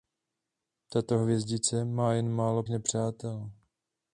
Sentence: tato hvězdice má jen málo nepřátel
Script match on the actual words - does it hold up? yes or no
yes